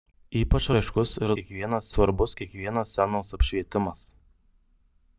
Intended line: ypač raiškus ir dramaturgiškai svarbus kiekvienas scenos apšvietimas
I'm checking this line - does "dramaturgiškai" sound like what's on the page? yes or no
no